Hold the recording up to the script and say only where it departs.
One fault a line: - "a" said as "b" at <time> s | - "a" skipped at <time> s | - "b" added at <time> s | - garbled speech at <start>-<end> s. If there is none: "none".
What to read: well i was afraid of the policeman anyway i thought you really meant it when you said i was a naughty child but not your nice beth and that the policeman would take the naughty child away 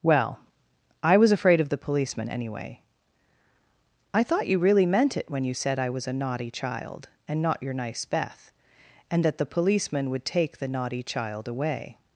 - "but" said as "and" at 7.3 s